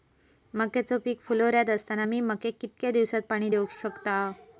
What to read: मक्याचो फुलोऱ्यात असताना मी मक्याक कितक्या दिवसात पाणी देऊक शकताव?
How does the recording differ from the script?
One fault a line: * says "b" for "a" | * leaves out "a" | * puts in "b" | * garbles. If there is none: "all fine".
* puts in "पीक"